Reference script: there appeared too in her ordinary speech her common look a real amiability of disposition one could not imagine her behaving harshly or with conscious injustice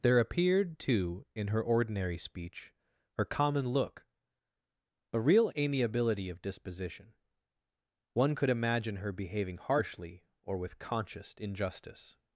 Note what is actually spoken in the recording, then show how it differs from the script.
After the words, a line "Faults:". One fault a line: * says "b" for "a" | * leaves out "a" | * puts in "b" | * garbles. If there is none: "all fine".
there appeared too in her ordinary speech her common look a real amiability of disposition one could imagine her behaving harshly or with conscious injustice
Faults:
* leaves out "not"